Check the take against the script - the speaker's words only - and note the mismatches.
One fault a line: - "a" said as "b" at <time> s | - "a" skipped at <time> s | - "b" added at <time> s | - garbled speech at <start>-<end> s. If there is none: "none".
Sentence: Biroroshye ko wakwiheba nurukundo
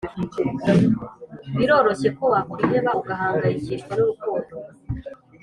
- "ugahangayikishwa" added at 3.0 s